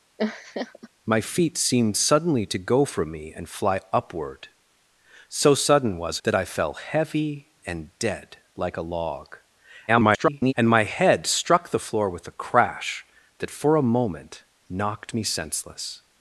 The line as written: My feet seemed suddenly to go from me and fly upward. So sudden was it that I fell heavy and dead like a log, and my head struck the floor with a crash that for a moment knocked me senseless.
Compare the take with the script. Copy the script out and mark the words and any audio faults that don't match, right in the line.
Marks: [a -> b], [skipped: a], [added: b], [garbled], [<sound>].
[laugh] My feet seemed suddenly to go from me and fly upward. So sudden was [skipped: it] that I fell heavy and dead like a log, [garbled] and my head struck the floor with a crash that for a moment knocked me senseless.